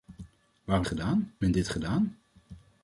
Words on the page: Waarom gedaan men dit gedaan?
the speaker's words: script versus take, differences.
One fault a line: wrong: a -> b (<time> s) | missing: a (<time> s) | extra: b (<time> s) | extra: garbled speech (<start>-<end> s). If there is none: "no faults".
no faults